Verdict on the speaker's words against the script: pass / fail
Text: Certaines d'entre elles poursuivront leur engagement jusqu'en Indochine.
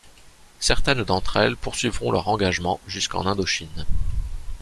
pass